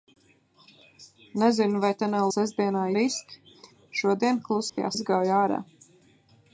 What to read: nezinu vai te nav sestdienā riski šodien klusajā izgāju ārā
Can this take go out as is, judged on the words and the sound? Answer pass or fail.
fail